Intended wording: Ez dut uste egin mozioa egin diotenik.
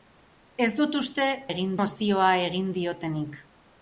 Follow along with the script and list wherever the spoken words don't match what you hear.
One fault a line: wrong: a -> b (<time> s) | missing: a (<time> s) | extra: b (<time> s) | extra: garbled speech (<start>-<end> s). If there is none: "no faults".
no faults